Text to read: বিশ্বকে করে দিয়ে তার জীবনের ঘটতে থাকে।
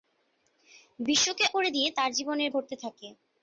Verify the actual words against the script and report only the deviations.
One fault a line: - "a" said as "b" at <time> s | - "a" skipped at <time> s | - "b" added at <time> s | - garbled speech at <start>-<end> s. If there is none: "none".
none